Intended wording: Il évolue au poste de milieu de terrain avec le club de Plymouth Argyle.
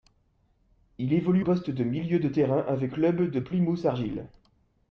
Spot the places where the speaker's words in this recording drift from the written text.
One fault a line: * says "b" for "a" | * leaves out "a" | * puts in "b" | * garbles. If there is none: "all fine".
* leaves out "au"
* leaves out "le"